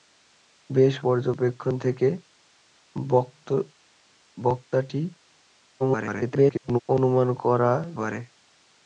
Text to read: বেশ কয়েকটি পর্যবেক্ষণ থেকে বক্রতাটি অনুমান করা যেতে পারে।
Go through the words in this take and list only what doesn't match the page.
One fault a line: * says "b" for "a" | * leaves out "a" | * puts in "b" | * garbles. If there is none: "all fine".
* leaves out "কয়েকটি"
* garbles
* leaves out "যেতে"